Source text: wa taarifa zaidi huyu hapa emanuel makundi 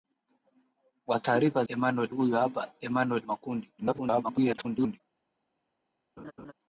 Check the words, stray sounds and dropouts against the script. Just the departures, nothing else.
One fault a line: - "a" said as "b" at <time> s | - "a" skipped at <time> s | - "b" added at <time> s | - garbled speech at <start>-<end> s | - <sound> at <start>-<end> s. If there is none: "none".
- "zaidi" said as "emanuel" at 1.7 s
- garbled speech at 3.8-5.0 s
- laugh at 6.2-6.5 s